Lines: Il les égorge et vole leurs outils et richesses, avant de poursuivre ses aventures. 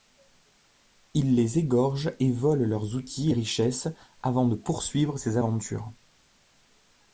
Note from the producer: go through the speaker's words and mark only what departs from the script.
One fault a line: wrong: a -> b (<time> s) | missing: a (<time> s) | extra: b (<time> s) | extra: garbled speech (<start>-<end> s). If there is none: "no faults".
no faults